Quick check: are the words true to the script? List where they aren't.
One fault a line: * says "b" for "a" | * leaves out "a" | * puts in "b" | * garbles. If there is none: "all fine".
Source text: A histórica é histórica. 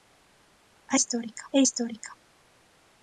all fine